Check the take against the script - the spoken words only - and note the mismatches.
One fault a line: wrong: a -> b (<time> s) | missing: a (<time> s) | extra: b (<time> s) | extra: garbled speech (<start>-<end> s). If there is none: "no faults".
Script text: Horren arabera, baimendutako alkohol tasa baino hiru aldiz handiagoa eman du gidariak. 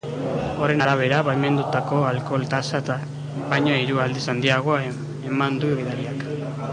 no faults